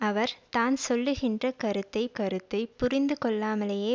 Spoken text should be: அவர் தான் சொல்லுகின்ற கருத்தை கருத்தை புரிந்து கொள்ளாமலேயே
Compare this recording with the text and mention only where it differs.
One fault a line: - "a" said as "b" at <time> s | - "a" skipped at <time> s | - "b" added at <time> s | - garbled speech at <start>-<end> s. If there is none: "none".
none